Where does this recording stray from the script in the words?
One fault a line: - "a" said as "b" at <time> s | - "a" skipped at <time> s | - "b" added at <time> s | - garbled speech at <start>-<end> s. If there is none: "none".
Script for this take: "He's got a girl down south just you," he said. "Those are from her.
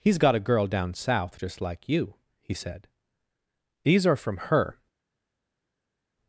- "like" added at 1.6 s
- "Those" said as "These" at 3.9 s